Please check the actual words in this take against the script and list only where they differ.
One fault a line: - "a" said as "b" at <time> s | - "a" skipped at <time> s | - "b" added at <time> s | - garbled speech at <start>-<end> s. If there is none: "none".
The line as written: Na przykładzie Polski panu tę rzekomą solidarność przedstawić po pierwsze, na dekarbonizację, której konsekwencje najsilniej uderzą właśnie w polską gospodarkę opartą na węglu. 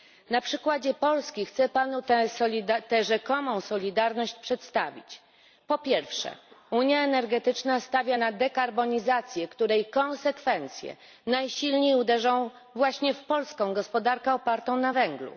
- "chcę" added at 1.4 s
- "unia energetyczna stawia" added at 6.7 s